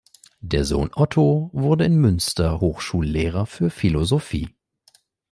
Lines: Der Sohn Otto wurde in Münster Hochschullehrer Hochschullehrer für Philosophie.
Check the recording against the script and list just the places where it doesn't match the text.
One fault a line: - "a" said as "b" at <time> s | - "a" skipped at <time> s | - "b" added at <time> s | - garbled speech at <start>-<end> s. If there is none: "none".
- "Hochschullehrer" skipped at 3.5 s